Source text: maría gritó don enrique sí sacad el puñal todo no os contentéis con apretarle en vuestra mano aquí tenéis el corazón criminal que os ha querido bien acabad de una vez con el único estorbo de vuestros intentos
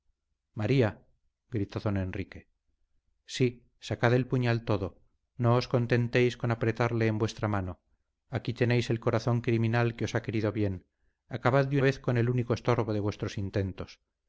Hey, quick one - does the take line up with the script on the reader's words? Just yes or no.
no